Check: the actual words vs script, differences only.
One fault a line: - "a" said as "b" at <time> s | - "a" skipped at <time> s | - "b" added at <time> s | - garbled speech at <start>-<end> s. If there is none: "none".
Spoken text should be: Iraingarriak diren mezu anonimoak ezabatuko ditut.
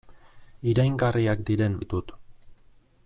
- "mezu anonimoak ezabatuko" skipped at 1.8 s